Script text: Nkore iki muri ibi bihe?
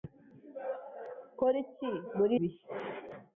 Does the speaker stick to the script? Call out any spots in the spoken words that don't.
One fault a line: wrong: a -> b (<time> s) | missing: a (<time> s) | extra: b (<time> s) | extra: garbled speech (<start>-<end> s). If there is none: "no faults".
missing: ibi (2.4 s)